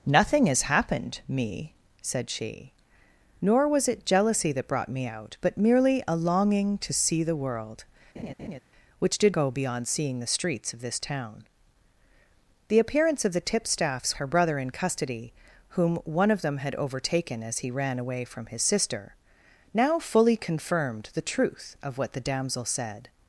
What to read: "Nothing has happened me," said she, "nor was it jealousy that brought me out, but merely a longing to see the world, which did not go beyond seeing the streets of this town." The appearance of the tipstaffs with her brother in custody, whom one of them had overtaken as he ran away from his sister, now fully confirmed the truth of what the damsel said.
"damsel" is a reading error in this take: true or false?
false